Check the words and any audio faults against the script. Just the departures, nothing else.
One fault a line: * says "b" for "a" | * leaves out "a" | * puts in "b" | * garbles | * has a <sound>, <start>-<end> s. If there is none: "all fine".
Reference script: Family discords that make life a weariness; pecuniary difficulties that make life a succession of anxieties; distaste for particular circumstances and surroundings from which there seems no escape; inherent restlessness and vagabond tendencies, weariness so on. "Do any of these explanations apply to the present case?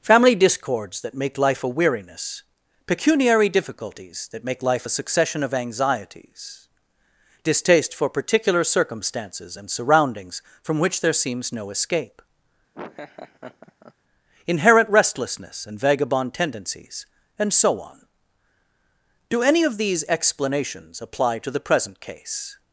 * has a laugh, 12.7-13.9 s
* says "and" for "weariness"